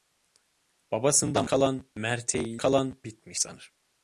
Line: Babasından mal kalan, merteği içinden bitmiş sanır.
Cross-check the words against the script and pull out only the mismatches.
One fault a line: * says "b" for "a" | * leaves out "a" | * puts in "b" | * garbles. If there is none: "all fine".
* leaves out "mal"
* says "kalan" for "içinden"